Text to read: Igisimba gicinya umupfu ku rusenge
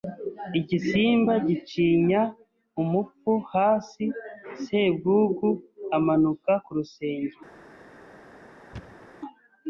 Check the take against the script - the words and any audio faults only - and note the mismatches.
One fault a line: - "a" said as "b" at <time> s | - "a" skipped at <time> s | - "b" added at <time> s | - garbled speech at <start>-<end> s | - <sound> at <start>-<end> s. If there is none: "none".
- "hasi Sebwugugu amanuka" added at 3.5 s
- thud at 8.7-9.1 s